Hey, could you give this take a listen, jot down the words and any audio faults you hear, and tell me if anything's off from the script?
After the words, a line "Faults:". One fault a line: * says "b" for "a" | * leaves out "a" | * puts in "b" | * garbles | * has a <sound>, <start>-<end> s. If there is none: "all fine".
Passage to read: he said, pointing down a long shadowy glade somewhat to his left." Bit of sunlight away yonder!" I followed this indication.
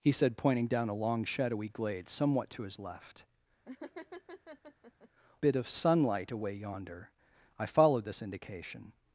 he said, pointing down a long shadowy glade somewhat to his left." Bit of sunlight away yonder!" I followed this indication.
Faults:
* has a laugh, 3.7-5.1 s